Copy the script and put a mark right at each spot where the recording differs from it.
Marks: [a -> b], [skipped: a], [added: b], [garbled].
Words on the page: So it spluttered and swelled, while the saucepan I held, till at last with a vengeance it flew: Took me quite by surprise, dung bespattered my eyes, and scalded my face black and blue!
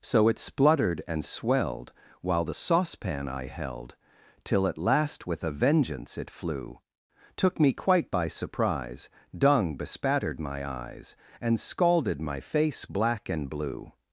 So it spluttered and swelled, while the saucepan I held, till at last with a vengeance it flew: Took me quite by surprise, dung bespattered my eyes, and scalded my face black and blue!